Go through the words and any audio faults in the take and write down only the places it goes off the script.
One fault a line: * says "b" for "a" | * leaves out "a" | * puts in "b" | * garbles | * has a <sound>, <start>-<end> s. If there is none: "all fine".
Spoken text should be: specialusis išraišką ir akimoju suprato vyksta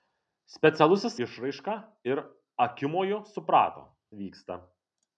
all fine